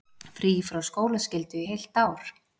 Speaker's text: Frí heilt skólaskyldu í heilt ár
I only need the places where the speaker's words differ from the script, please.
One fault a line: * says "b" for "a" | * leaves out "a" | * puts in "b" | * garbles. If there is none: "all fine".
* says "frá" for "heilt"